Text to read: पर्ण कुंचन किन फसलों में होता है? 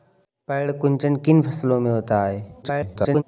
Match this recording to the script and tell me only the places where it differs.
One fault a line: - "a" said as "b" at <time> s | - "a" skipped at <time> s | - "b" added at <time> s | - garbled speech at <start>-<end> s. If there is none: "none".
- garbled speech at 2.6-3.2 s